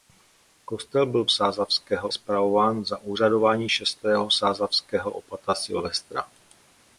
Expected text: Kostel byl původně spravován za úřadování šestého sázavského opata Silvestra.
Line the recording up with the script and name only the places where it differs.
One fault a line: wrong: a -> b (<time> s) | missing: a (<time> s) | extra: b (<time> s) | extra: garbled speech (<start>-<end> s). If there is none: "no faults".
wrong: původně -> sázavského (1.3 s)